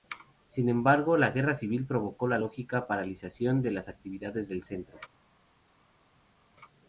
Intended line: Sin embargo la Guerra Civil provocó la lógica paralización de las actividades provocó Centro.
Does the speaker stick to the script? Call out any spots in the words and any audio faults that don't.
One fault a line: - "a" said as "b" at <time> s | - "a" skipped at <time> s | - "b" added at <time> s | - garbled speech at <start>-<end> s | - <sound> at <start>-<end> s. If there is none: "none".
- "provocó" said as "del" at 4.5 s